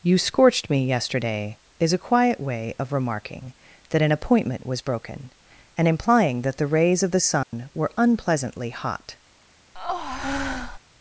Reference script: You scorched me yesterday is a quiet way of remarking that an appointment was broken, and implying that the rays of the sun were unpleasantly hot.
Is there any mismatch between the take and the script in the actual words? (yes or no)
no